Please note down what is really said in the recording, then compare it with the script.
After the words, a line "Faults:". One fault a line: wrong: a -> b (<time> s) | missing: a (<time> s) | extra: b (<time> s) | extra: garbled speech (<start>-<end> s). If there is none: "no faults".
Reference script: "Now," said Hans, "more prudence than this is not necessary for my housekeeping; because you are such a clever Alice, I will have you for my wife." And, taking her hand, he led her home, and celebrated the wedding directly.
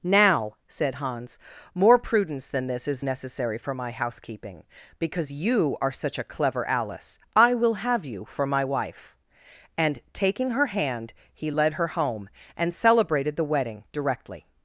"Now," said Hans, "more prudence than this is necessary for my housekeeping; because you are such a clever Alice, I will have you for my wife." And, taking her hand, he led her home, and celebrated the wedding directly.
Faults:
missing: not (3.0 s)